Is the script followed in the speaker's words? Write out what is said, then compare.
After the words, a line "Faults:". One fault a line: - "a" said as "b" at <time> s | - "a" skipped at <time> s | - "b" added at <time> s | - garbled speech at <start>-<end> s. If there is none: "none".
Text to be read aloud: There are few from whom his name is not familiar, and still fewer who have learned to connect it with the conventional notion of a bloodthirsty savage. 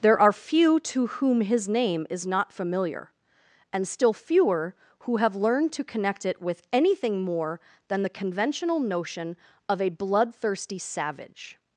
There are few to whom his name is not familiar, and still fewer who have learned to connect it with anything more than the conventional notion of a bloodthirsty savage.
Faults:
- "from" said as "to" at 0.8 s
- "anything more than" added at 6.7 s